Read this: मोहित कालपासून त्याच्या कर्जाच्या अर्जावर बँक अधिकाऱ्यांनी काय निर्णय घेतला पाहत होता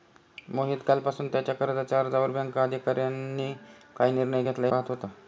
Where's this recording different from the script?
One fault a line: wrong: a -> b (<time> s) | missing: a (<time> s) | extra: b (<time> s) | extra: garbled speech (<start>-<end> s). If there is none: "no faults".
no faults